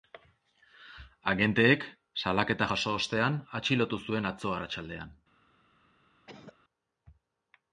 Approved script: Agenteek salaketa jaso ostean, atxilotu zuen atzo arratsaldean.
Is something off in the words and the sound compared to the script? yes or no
yes